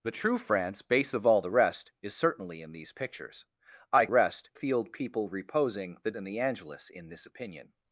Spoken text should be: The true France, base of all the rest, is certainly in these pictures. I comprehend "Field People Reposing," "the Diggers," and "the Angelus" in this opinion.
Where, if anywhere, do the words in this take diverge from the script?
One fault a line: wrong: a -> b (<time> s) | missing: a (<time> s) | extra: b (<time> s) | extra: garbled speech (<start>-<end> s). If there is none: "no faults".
wrong: comprehend -> rest (4.1 s)
missing: Diggers (6.1 s)